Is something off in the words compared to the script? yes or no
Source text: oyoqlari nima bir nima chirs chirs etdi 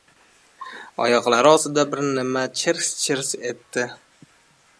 yes